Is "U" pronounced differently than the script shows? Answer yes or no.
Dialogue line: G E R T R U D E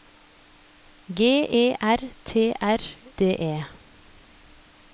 yes